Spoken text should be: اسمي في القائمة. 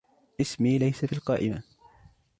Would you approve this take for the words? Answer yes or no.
no